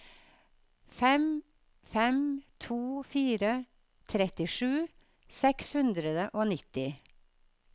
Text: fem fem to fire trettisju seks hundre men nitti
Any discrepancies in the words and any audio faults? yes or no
yes